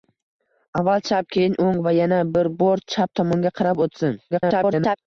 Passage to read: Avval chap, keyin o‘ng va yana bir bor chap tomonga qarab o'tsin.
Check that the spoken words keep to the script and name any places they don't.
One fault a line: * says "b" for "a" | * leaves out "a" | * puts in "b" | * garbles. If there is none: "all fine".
* garbles